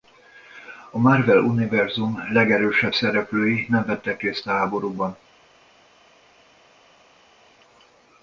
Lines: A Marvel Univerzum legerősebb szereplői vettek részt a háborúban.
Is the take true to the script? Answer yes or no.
no